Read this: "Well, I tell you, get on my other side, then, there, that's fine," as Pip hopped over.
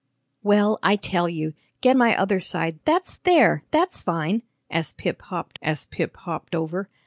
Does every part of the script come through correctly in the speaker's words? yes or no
no